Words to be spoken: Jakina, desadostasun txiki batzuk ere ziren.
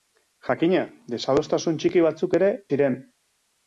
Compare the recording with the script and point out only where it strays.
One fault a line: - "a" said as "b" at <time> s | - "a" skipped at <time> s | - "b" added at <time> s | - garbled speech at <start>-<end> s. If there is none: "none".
none